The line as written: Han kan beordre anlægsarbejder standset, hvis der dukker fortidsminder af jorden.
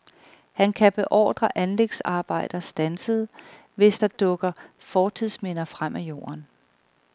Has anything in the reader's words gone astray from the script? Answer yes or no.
yes